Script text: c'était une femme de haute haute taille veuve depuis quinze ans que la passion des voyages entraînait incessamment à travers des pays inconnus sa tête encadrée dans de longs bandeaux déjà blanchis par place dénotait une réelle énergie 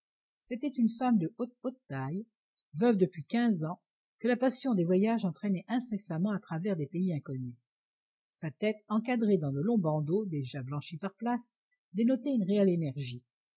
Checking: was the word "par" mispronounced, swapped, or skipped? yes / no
no